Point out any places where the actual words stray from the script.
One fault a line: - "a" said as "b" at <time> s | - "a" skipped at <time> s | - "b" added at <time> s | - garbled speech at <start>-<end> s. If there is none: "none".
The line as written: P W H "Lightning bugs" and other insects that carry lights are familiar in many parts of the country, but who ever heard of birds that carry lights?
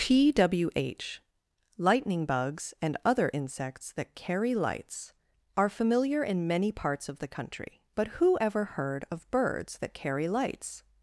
none